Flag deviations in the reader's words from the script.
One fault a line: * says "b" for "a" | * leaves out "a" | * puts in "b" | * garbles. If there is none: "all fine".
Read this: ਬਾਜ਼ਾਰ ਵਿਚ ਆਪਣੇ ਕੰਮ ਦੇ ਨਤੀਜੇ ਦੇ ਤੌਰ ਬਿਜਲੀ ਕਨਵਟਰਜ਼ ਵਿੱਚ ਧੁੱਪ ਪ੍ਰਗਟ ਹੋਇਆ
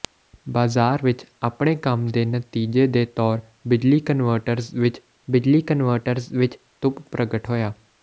* puts in "ਬਿਜਲੀ ਕਨਵਟਰਜ਼ ਵਿੱਚ"